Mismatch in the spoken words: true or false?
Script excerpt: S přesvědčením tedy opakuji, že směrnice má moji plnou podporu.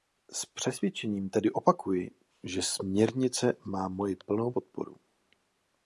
false